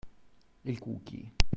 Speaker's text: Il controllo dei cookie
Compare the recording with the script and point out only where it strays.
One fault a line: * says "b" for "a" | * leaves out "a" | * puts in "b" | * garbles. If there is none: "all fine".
* leaves out "controllo dei"